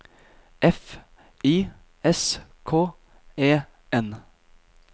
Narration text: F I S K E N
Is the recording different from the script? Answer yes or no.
no